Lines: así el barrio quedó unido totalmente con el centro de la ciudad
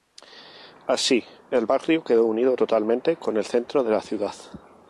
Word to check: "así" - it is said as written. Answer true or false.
true